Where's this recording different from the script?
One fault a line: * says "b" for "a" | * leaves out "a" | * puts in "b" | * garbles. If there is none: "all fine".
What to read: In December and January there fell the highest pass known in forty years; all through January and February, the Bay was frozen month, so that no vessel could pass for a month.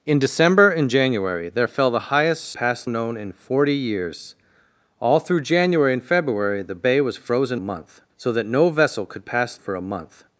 all fine